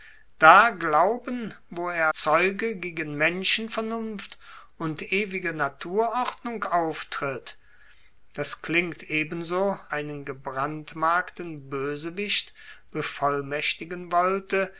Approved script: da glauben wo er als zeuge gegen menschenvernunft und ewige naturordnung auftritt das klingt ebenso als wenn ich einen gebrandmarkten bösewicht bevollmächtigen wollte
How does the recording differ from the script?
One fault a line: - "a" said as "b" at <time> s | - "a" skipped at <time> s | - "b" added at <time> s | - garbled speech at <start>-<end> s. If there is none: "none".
- "als" skipped at 2.1 s
- "als wenn ich" skipped at 9.8 s